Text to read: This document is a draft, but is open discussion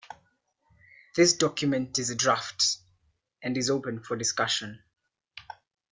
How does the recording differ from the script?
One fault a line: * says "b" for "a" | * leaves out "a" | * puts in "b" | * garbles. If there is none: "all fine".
* says "and" for "but"
* puts in "for"